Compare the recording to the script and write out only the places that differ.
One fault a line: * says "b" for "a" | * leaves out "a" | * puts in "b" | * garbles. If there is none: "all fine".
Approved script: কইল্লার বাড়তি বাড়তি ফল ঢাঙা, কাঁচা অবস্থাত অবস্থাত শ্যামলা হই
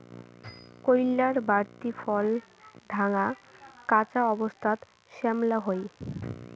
* leaves out "বাড়তি"
* leaves out "অবস্থাত"